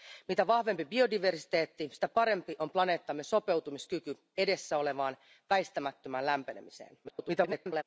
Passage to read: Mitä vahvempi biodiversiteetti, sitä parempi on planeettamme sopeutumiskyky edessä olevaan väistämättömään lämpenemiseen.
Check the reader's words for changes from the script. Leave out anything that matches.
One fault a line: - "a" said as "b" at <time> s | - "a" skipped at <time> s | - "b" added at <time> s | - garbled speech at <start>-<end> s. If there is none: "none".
- garbled speech at 7.0-7.8 s